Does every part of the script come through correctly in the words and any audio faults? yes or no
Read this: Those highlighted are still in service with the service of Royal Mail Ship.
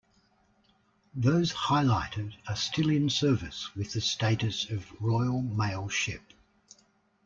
no